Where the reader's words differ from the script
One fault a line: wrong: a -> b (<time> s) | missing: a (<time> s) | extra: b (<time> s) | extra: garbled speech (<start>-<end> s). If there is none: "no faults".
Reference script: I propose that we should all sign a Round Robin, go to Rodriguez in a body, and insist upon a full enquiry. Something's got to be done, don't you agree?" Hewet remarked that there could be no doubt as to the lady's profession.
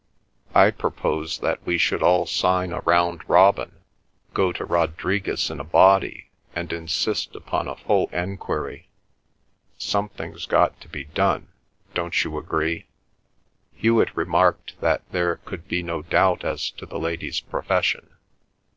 no faults